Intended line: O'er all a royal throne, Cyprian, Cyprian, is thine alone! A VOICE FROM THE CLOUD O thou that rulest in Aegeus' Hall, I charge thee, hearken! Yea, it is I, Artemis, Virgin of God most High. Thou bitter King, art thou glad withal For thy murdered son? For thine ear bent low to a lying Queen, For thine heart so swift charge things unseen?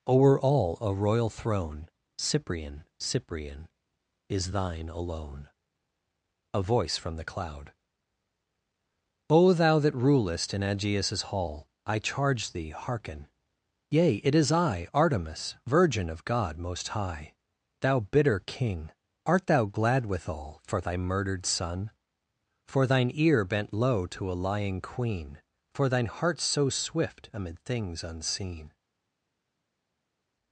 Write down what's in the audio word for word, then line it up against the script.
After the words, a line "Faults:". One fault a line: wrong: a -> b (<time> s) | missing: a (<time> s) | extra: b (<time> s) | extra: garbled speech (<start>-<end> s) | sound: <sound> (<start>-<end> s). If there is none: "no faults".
O'er all a royal throne, Cyprian, Cyprian, is thine alone! A VOICE FROM THE CLOUD O thou that rulest in Aegeus' Hall, I charge thee, hearken! Yea, it is I, Artemis, Virgin of God most High. Thou bitter King, art thou glad withal For thy murdered son? For thine ear bent low to a lying Queen, For thine heart so swift amid things unseen?
Faults:
wrong: charge -> amid (27.3 s)